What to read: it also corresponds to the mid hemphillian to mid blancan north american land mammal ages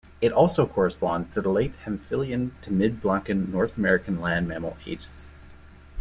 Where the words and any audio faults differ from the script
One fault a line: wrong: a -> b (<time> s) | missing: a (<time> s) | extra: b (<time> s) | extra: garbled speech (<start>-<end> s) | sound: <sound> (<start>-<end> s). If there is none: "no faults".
wrong: mid -> late (1.5 s)